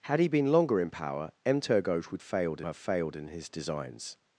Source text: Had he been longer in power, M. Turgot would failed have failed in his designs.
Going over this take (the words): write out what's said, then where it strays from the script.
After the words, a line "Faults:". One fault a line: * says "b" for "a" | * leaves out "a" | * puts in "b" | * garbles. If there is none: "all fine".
Had he been longer in power, M. Turgot would failed have failed in his designs.
Faults:
all fine